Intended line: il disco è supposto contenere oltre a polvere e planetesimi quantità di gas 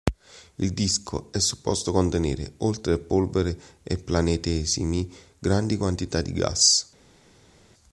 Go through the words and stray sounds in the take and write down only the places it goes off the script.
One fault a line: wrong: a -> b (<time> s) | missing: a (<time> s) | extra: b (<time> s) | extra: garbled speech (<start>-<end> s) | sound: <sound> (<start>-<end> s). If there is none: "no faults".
extra: grandi (5.4 s)